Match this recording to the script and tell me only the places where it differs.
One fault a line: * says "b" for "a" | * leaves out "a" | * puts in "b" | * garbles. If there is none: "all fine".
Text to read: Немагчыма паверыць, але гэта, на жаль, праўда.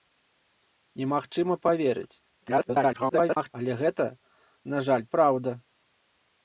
* garbles